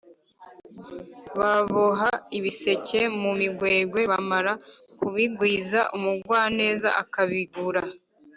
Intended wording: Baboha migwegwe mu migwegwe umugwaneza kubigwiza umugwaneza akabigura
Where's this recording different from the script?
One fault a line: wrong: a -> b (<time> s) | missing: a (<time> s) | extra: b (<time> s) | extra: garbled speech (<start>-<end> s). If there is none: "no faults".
wrong: migwegwe -> ibiseke (2.4 s)
wrong: umugwaneza -> bamara (4.1 s)